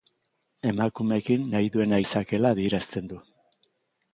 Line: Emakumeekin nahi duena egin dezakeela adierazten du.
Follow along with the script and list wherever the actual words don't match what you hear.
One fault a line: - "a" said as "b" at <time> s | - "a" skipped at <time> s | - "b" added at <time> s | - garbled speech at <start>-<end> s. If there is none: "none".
- "egin" skipped at 2.0 s